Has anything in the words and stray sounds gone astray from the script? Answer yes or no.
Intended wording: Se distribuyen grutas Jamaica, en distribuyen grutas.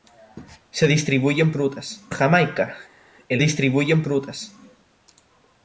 no